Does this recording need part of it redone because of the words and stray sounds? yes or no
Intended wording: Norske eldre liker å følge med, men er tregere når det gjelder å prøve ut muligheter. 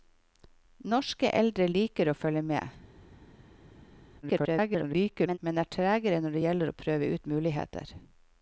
yes